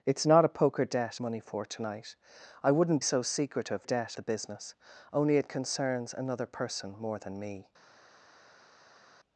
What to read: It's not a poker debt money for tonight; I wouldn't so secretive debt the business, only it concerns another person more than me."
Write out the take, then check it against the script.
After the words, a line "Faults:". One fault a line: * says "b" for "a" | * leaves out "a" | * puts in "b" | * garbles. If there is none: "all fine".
It's not a poker debt money for tonight; I wouldn't so secretive debt the business, only it concerns another person more than me."
Faults:
all fine